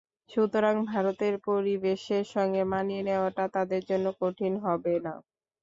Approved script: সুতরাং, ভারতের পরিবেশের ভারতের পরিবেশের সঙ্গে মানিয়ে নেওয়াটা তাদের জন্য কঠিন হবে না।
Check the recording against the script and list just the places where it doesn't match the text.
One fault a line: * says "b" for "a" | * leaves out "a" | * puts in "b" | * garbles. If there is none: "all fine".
* leaves out "ভারতের পরিবেশের"